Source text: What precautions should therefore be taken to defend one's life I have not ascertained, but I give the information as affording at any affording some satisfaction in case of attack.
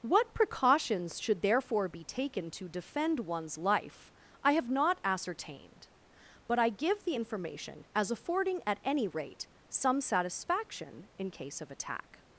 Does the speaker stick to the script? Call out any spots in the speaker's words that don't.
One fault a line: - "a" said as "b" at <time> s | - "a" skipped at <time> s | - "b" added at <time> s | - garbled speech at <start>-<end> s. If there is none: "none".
- "affording" said as "rate" at 9.1 s